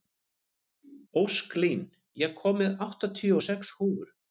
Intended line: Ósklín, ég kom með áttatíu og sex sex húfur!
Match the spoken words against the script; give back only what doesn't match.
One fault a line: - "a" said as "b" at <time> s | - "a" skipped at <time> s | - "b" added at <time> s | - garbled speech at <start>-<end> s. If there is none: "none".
- "sex" skipped at 3.8 s